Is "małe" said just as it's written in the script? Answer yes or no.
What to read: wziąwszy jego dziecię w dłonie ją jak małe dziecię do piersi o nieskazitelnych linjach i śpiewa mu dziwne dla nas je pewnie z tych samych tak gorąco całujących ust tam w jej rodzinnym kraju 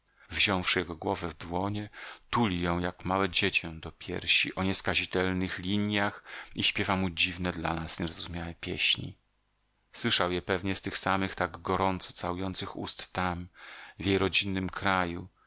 yes